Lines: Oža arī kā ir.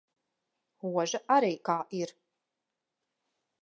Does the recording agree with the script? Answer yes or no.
yes